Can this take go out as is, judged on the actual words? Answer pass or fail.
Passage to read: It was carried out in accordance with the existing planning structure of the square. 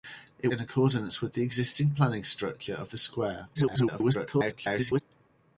fail